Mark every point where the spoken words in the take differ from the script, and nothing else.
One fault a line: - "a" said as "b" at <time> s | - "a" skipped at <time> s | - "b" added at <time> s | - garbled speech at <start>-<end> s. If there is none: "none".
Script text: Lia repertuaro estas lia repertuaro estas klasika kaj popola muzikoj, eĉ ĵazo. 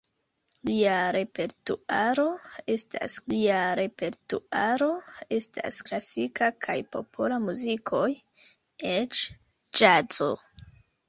none